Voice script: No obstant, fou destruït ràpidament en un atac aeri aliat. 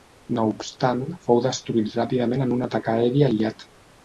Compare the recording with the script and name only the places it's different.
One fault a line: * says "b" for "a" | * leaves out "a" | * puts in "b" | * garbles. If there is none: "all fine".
all fine